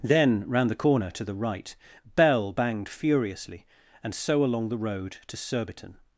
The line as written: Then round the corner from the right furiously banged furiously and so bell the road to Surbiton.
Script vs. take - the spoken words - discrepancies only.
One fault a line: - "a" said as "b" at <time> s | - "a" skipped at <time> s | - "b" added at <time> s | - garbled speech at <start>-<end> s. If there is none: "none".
- "from" said as "to" at 1.1 s
- "furiously" said as "bell" at 2.1 s
- "bell" said as "along" at 4.4 s